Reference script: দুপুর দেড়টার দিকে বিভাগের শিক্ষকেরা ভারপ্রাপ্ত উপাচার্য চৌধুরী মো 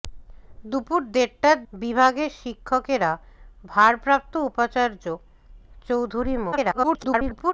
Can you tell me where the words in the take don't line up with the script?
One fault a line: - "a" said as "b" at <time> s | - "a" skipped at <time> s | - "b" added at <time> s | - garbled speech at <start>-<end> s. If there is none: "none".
- "দিকে" skipped at 1.6 s
- garbled speech at 6.5-7.5 s